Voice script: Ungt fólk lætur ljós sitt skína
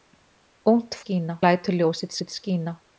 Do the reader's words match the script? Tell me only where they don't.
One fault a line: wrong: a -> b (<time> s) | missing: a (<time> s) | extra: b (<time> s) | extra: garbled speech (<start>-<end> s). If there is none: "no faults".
wrong: fólk -> skína (1.0 s)
extra: sitt (2.2 s)